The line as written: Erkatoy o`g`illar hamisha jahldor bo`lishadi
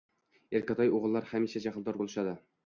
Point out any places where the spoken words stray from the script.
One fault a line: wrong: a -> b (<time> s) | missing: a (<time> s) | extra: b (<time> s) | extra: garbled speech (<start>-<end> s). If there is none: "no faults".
no faults